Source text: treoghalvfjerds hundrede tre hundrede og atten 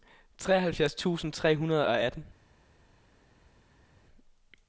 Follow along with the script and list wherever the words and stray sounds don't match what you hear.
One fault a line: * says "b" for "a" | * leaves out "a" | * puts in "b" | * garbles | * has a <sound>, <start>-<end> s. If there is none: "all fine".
* says "tusind" for "hundrede"